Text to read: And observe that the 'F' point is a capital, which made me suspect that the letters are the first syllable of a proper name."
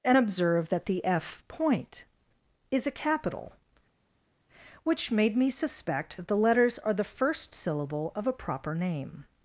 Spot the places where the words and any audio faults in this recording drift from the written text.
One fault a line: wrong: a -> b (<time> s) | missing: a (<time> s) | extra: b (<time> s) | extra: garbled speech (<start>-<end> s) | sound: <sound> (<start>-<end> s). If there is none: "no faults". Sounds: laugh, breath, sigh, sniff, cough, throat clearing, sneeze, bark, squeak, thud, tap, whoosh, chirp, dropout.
no faults